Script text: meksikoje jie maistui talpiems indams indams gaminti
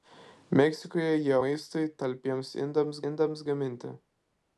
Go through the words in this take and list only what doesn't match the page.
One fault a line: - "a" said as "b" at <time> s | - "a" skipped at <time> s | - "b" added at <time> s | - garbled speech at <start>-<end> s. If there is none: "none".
none